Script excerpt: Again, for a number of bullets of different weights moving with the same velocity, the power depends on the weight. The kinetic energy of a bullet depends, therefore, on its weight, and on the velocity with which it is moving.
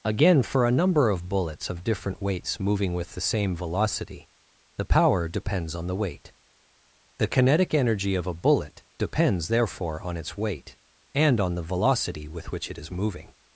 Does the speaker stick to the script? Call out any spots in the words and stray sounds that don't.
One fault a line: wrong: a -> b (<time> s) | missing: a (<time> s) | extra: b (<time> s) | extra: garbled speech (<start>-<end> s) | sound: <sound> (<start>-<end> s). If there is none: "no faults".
no faults